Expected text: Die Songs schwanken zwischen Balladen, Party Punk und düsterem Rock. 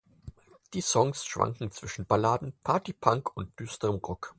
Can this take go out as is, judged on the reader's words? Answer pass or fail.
pass